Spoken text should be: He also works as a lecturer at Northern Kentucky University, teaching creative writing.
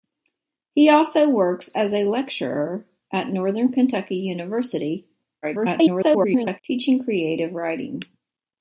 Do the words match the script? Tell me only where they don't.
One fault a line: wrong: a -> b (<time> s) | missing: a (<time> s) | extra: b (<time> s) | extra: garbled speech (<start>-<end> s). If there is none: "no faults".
extra: garbled speech (5.4-6.6 s)